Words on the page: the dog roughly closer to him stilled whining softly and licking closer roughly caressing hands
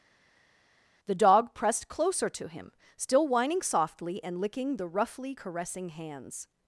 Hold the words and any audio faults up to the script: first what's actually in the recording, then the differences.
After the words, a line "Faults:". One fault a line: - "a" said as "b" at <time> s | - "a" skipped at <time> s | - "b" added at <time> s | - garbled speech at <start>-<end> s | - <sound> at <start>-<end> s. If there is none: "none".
the dog pressed closer to him still whining softly and licking the roughly caressing hands
Faults:
- "roughly" said as "pressed" at 1.5 s
- "stilled" said as "still" at 3.0 s
- "closer" said as "the" at 4.8 s